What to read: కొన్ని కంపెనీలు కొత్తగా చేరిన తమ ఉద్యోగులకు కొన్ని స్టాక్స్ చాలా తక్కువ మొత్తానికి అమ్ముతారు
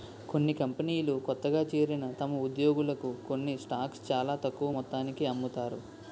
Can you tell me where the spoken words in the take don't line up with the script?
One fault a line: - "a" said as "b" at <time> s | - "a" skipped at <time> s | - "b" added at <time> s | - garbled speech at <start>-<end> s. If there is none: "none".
none